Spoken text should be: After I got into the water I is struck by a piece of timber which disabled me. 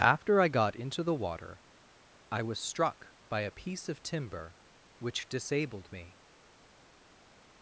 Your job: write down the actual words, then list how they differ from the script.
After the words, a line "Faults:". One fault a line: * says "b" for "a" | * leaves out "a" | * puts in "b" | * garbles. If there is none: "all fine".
After I got into the water I was struck by a piece of timber which disabled me.
Faults:
* says "was" for "is"